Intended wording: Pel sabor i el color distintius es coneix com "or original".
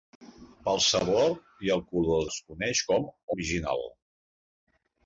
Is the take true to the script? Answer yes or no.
no